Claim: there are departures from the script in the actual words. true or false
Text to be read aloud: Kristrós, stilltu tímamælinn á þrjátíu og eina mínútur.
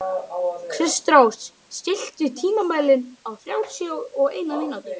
false